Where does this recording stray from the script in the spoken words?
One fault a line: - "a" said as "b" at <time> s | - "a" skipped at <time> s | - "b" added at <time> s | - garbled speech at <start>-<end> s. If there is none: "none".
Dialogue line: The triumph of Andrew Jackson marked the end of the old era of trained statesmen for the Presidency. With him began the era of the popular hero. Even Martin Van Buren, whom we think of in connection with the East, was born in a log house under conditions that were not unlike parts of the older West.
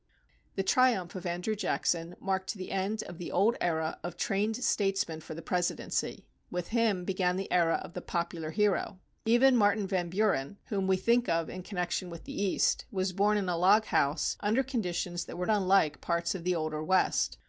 - "not" skipped at 15.4 s